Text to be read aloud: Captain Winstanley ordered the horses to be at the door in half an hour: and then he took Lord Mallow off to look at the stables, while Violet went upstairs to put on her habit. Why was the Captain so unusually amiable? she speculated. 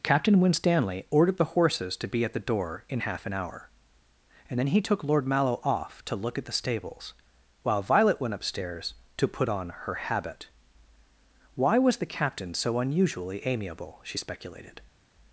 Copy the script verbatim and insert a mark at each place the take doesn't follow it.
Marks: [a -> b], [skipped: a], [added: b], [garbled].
Captain Winstanley ordered the horses to be at the door in half an hour: and then he took Lord Mallow off to look at the stables, while Violet went upstairs to put on her habit. Why was the Captain so unusually amiable? she speculated.